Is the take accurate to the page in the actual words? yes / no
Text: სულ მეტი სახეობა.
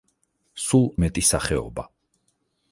yes